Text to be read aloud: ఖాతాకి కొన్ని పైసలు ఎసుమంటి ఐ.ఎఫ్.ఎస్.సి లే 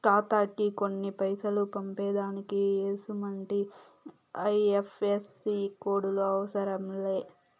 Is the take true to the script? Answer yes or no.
no